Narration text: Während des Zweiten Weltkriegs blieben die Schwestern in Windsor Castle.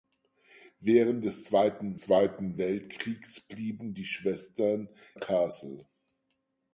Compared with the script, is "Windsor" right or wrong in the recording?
wrong